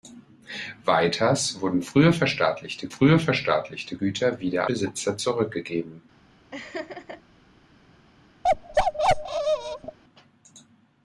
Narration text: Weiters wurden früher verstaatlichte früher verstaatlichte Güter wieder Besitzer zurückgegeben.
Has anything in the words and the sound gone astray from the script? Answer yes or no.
yes